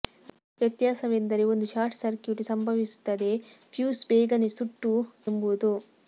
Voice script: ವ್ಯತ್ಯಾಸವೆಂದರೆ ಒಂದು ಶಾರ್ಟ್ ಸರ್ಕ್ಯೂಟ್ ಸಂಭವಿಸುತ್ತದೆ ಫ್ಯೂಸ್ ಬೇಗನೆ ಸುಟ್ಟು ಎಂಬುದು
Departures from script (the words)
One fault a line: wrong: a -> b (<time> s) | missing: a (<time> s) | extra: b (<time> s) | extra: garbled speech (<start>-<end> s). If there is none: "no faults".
no faults